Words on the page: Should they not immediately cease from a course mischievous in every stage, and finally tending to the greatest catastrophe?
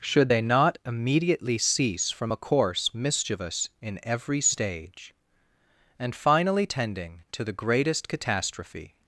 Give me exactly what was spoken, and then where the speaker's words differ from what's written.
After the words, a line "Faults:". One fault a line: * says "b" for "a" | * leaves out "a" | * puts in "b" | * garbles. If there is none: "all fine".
Should they not immediately cease from a course mischievous in every stage, and finally tending to the greatest catastrophe?
Faults:
all fine